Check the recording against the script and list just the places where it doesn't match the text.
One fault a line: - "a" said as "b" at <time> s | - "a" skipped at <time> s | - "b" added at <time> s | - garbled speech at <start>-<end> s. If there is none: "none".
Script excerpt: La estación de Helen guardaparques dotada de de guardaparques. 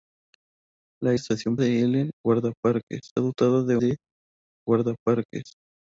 none